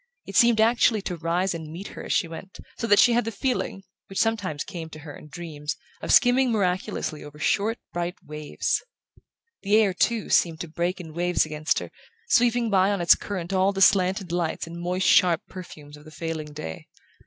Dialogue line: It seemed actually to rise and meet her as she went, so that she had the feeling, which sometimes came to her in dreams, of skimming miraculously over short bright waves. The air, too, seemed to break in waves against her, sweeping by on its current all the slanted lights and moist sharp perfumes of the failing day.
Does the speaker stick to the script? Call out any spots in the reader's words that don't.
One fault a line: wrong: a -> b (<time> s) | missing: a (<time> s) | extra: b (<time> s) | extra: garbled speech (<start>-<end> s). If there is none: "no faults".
no faults